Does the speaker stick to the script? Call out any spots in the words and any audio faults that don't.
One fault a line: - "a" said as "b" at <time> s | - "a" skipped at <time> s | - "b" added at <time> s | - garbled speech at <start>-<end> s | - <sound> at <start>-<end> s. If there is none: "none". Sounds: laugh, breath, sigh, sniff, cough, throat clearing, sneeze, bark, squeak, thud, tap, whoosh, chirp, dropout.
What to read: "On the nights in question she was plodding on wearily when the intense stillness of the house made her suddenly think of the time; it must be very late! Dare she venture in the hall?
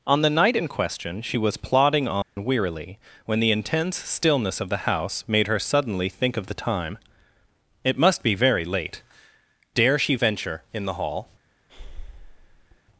- "nights" said as "night" at 0.3 s
- dropout at 2.2-2.4 s
- breath at 11.7-12.8 s